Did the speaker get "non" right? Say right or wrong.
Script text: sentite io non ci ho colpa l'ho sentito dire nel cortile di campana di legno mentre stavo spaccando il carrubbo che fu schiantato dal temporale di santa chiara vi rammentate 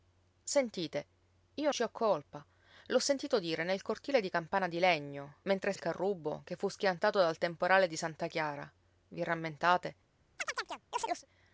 wrong